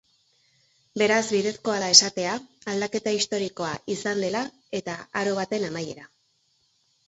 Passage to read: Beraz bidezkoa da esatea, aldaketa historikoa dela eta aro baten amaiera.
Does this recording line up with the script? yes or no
no